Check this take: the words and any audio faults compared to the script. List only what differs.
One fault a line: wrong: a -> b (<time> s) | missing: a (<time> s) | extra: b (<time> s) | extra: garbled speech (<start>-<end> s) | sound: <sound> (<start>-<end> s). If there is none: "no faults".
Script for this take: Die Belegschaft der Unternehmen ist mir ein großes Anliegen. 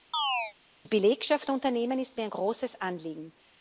sound: chirp (0.1-0.5 s)